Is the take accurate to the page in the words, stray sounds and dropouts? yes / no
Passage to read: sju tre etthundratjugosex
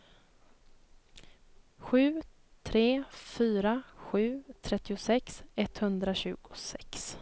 no